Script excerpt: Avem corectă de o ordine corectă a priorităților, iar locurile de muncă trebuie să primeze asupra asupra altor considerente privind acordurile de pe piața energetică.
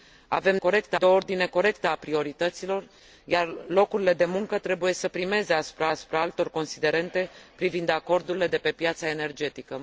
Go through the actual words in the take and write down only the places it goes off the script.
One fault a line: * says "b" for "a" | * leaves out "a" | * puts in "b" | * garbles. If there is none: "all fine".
all fine